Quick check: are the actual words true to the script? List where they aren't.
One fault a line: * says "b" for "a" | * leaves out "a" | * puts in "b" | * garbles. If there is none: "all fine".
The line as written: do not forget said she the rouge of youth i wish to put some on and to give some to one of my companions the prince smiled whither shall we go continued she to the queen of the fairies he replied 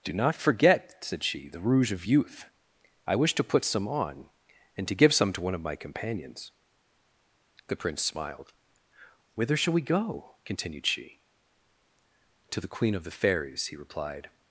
all fine